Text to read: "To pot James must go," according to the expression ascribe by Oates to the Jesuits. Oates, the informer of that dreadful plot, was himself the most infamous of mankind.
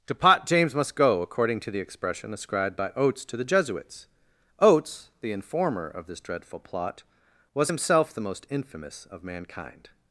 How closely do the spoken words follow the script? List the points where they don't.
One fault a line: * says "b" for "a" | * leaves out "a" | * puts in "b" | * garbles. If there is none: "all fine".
* says "ascribed" for "ascribe"
* says "this" for "that"